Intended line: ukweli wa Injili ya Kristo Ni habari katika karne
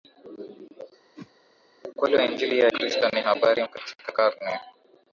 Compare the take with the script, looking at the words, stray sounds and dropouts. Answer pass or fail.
fail